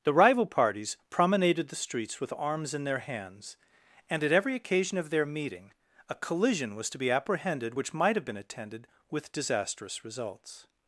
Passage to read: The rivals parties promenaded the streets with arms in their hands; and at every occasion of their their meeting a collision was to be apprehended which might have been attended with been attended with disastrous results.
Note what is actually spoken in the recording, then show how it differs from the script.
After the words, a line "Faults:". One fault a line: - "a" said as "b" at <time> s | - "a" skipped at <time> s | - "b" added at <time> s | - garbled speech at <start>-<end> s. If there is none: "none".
The rival parties promenaded the streets with arms in their hands; and at every occasion of their meeting a collision was to be apprehended which might have been attended with disastrous results.
Faults:
- "rivals" said as "rival" at 0.1 s
- "their" skipped at 5.2 s
- "been attended with" skipped at 9.3 s